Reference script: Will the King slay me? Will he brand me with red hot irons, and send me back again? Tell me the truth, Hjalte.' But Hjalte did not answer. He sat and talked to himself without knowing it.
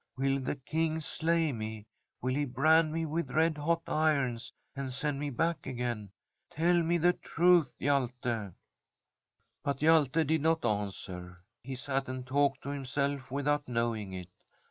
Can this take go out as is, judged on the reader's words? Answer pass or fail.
pass